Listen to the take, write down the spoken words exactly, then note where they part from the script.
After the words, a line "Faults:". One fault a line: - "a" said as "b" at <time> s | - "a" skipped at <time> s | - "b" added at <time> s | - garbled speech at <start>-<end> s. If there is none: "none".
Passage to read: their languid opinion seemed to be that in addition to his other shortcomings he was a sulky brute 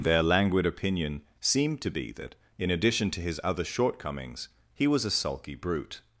their languid opinion seemed to be that in addition to his other shortcomings he was a sulky brute
Faults:
none